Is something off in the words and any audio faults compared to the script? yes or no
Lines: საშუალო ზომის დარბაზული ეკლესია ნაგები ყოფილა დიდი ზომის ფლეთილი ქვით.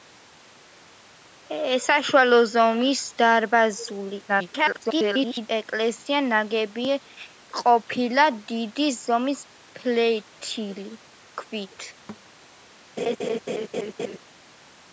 yes